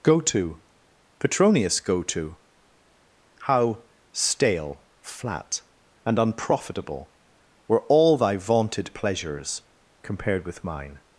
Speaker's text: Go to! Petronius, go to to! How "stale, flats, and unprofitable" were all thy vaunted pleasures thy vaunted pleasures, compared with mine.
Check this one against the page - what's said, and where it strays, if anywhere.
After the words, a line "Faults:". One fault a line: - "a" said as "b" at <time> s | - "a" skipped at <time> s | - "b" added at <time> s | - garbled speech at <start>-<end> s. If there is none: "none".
Go to! Petronius, go to! How "stale, flat, and unprofitable" were all thy vaunted pleasures, compared with mine.
Faults:
- "to" skipped at 2.4 s
- "flats" said as "flat" at 5.0 s
- "thy vaunted pleasures" skipped at 9.6 s